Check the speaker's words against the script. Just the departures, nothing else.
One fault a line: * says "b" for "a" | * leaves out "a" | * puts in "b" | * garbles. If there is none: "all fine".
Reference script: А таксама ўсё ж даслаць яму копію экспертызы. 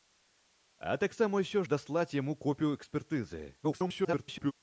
* leaves out "ж"
* garbles